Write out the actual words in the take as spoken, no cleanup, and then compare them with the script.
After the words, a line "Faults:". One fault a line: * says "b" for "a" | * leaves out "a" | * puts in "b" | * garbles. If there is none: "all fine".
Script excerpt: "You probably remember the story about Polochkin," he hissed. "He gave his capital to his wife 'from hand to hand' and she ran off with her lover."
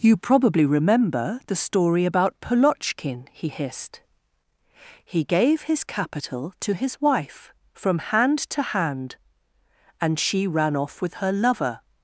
"You probably remember the story about Polochkin," he hissed. "He gave his capital to his wife 'from hand to hand' and she ran off with her lover."
Faults:
all fine